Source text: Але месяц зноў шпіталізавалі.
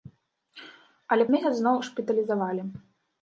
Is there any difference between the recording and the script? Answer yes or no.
no